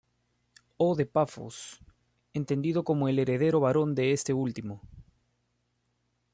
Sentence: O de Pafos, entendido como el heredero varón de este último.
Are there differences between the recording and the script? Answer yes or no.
no